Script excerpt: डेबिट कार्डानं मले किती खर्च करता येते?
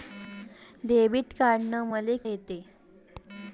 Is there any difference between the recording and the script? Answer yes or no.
yes